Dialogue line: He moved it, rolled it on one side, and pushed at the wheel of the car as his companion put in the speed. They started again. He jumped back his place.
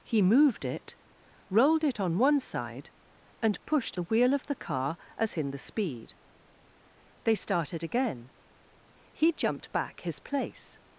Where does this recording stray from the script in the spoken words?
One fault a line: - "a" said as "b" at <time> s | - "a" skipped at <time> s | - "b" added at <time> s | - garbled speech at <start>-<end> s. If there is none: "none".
- "at" skipped at 4.0 s
- "his companion put" skipped at 5.3 s